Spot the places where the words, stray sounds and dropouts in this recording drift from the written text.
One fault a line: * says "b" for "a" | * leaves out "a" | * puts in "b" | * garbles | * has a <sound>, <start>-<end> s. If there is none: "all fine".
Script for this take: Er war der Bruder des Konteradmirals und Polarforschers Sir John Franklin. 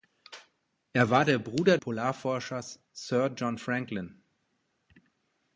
* leaves out "des Konteradmirals und"